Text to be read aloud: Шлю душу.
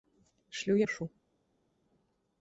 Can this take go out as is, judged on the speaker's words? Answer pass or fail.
pass